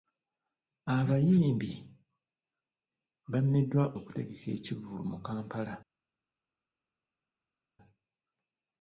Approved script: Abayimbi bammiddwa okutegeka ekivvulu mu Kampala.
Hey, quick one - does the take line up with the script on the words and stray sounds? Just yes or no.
yes